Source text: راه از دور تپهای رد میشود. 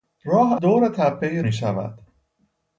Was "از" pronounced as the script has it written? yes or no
no